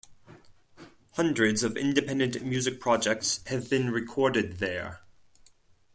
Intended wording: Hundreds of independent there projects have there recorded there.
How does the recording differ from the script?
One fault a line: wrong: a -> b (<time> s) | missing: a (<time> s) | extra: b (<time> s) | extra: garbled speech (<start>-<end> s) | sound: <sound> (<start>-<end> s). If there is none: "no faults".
wrong: there -> music (2.4 s)
wrong: there -> been (3.7 s)